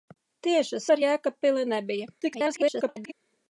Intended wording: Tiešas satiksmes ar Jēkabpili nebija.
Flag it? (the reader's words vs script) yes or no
yes